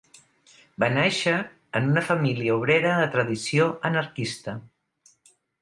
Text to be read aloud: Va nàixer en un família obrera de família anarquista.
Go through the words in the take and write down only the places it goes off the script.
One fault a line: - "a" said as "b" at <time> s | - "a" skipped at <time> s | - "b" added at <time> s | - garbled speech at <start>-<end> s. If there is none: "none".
- "un" said as "una" at 1.9 s
- "família" said as "tradició" at 3.2 s